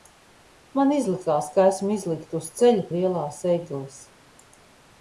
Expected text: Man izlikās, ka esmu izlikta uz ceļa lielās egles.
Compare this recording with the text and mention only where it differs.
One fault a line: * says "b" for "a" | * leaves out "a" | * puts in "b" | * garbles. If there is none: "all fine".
all fine